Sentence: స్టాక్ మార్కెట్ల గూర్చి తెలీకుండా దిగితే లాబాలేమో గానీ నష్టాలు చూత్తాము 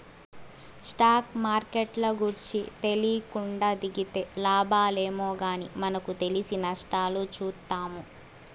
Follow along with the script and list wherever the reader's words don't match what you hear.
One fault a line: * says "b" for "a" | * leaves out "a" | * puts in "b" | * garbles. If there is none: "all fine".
* puts in "మనకు తెలిసి"